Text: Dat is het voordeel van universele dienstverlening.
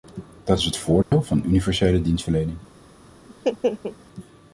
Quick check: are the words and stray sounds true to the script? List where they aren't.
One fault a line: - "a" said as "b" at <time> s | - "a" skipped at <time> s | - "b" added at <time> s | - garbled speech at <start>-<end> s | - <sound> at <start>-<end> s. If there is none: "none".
- dropout at 1.0-1.1 s
- laugh at 3.3-4.0 s